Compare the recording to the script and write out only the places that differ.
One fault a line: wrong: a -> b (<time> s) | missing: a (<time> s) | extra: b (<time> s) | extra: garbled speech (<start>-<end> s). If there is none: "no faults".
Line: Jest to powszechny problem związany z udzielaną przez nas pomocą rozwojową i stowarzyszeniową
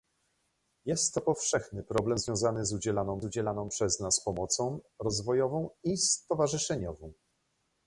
extra: udzielaną (3.2 s)